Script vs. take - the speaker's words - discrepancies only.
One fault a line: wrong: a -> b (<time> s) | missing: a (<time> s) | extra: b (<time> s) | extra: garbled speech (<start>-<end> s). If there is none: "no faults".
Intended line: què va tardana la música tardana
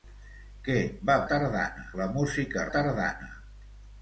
no faults